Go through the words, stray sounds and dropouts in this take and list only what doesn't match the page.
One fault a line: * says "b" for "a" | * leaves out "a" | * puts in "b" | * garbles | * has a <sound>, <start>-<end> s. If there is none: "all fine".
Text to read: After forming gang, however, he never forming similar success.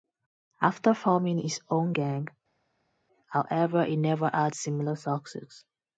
* puts in "his own"
* says "had" for "forming"